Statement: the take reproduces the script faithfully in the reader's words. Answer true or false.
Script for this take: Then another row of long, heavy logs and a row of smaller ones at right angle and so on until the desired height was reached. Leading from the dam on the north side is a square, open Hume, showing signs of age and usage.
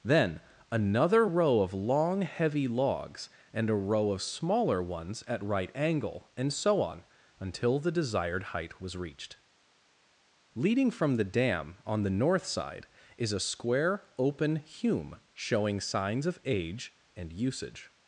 true